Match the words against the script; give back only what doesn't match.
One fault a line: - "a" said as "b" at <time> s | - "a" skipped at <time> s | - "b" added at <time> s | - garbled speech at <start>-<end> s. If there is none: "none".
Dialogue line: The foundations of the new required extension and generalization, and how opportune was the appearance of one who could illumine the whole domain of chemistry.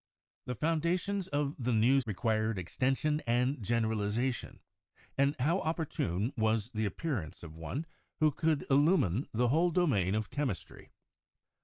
none